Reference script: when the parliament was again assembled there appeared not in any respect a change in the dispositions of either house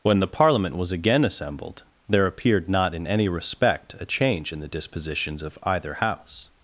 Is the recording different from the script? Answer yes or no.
no